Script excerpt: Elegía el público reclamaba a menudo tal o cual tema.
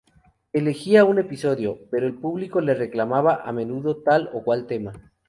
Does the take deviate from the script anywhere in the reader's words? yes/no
yes